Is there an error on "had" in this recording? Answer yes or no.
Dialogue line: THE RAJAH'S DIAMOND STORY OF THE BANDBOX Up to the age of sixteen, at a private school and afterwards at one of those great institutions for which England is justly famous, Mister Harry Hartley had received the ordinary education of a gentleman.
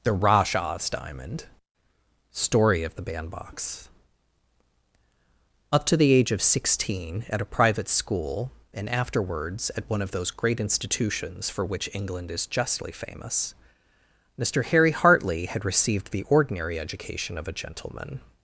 no